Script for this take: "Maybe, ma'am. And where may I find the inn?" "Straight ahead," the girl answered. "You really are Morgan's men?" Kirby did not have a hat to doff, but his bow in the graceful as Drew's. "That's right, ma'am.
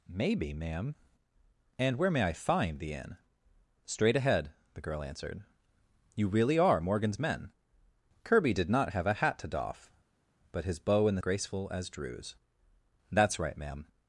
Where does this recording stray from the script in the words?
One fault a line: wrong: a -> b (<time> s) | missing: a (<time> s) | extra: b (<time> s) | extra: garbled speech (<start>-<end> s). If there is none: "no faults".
no faults